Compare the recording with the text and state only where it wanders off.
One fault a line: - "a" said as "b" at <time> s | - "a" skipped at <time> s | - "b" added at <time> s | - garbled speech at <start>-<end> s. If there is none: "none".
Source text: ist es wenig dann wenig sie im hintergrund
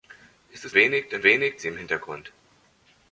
none